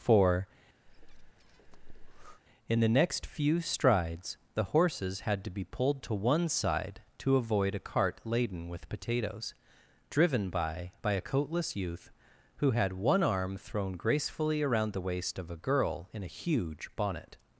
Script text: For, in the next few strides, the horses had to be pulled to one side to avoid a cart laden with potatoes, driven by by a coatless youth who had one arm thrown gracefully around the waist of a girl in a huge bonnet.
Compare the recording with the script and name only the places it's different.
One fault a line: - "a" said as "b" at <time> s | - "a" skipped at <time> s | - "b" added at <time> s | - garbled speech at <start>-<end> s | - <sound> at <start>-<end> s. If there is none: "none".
- breath at 0.9-2.4 s